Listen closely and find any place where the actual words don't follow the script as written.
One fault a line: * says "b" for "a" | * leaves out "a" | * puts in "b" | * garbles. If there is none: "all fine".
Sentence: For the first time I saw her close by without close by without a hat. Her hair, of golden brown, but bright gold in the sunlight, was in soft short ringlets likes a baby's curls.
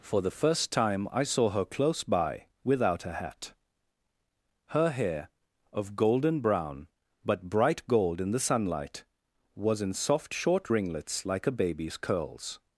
* leaves out "close by without"
* says "like" for "likes"